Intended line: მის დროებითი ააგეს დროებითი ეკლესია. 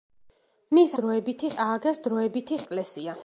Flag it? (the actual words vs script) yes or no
no